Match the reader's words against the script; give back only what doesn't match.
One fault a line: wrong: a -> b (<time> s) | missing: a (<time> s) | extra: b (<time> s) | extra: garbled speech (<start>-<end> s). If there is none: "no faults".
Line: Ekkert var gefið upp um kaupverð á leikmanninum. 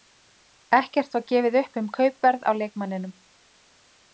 no faults